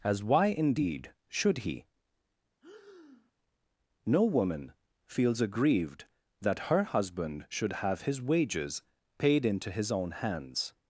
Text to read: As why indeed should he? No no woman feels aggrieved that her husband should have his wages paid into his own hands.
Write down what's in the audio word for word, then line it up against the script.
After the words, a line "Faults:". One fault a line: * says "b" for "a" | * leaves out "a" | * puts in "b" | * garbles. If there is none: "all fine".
As why indeed should he? No woman feels aggrieved that her husband should have his wages paid into his own hands.
Faults:
* leaves out "no"